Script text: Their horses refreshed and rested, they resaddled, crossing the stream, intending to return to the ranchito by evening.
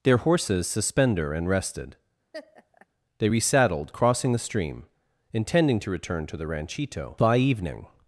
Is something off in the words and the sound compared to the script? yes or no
yes